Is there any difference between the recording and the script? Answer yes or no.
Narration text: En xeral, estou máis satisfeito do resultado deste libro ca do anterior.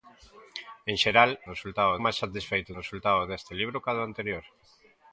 yes